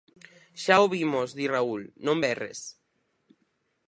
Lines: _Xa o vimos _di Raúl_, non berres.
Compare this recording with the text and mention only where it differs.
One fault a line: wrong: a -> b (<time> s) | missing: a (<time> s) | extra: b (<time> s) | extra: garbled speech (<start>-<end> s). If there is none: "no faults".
no faults